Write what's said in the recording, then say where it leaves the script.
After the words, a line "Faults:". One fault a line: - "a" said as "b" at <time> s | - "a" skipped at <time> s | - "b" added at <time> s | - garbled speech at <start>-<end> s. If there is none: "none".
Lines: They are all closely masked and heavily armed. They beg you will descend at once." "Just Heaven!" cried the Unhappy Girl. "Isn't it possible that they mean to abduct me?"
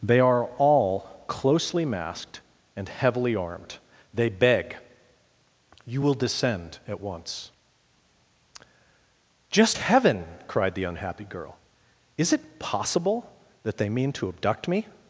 They are all closely masked and heavily armed. They beg you will descend at once." "Just Heaven!" cried the Unhappy Girl. "Is it possible that they mean to abduct me?"
Faults:
- "Isn't" said as "Is" at 12.2 s